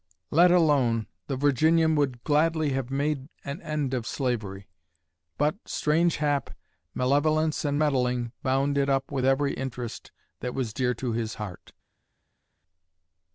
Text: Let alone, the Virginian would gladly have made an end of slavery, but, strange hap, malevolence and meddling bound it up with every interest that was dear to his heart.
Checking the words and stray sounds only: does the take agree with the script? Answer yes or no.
yes